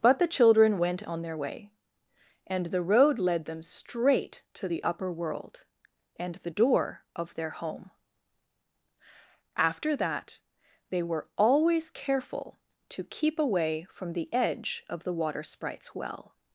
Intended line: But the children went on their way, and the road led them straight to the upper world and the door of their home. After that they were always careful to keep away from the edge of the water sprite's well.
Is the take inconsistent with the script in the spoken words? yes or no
no